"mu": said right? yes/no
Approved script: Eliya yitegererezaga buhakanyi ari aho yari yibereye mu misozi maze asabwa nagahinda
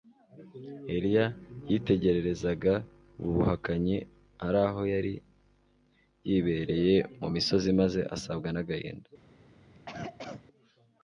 yes